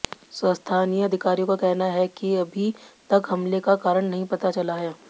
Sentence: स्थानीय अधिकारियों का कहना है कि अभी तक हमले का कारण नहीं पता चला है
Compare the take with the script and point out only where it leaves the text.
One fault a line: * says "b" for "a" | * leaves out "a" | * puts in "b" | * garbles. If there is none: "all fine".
all fine